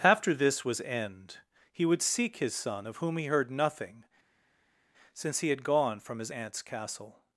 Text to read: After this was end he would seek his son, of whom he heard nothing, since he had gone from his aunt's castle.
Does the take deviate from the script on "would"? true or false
false